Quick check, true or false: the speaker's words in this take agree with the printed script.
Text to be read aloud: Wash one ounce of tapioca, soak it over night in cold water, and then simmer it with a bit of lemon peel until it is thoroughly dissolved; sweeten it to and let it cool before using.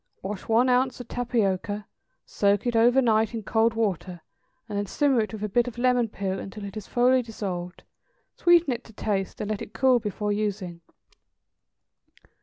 false